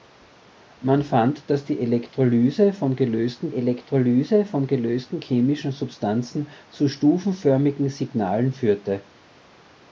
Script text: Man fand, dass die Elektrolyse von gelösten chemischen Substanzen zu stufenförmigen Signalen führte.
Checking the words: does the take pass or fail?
fail